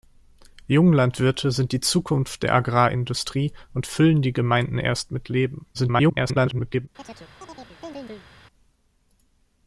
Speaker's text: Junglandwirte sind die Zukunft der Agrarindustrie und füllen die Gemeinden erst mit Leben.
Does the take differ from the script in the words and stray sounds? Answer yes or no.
yes